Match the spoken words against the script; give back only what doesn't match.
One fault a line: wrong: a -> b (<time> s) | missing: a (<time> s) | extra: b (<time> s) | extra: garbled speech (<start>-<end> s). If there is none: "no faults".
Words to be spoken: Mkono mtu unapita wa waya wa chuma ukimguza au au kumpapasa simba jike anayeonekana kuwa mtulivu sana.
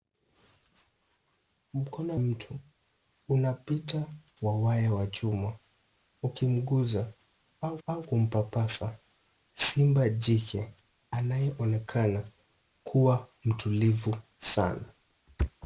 no faults